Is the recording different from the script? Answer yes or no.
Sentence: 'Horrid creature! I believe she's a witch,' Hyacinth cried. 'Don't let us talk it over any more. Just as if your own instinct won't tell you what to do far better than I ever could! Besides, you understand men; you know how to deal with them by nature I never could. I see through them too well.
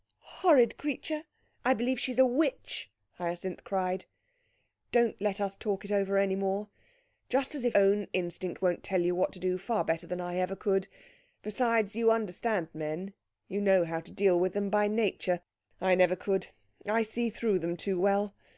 yes